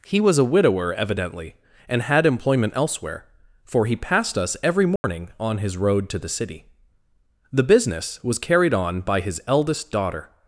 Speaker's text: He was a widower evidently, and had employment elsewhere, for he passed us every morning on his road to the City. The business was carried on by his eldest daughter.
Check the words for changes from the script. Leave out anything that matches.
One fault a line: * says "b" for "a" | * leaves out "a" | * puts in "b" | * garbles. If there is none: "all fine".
all fine